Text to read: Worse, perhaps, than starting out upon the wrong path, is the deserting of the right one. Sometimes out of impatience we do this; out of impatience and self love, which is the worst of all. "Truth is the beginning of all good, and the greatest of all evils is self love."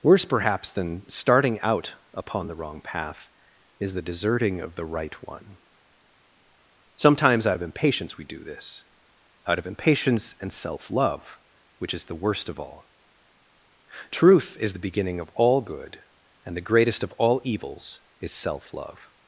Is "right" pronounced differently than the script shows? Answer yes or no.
no